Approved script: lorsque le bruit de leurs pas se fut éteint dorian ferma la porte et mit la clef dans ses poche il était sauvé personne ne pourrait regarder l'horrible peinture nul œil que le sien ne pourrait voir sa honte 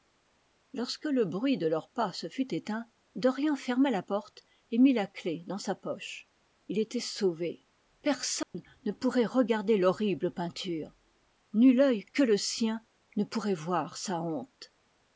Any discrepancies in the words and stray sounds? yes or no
yes